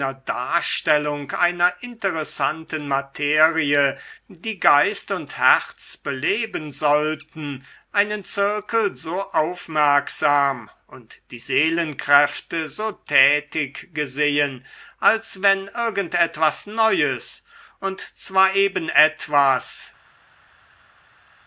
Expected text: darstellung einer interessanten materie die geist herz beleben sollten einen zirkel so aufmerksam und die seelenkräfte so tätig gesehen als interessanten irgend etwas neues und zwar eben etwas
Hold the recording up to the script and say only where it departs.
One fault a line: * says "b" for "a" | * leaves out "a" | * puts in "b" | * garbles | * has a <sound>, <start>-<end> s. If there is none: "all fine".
* puts in "und"
* says "wenn" for "interessanten"